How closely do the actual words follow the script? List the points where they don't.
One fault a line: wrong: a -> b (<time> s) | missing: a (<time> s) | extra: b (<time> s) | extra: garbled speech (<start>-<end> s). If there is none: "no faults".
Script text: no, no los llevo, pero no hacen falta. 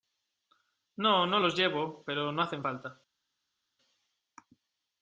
no faults